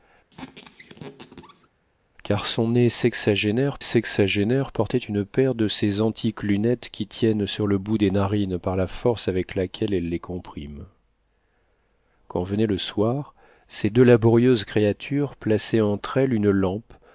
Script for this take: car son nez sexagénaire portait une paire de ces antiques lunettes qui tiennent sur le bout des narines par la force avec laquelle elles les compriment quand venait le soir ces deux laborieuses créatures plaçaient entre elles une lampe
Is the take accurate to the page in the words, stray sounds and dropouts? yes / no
no